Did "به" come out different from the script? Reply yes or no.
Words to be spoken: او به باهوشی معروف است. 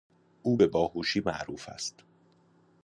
no